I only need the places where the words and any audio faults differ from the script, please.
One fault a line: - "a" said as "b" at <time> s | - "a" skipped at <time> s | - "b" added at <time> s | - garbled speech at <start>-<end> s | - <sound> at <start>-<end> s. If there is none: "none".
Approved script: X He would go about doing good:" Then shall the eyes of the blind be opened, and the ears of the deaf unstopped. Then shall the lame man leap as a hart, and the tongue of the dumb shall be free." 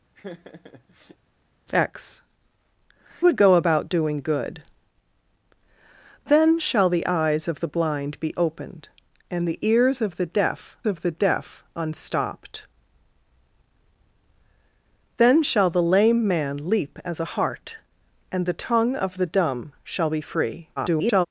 - laugh at 0.1-1.2 s
- "He" skipped at 2.2 s
- "of the deaf" added at 10.8 s
- garbled speech at 20.8-21.3 s